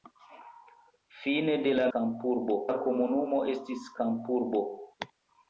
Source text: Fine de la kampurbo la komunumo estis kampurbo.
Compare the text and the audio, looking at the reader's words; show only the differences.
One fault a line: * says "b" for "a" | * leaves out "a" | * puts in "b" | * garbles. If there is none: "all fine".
all fine